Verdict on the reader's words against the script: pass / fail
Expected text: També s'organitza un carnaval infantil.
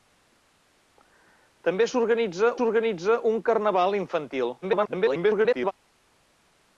fail